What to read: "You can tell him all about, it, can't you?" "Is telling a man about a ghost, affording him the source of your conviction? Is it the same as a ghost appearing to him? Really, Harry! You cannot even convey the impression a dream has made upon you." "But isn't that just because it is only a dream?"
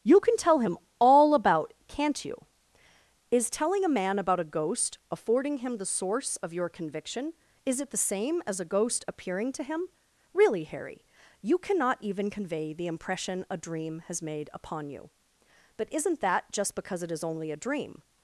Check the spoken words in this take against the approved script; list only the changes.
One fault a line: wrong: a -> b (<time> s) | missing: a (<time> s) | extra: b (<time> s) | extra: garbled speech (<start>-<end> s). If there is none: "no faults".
missing: it (1.7 s)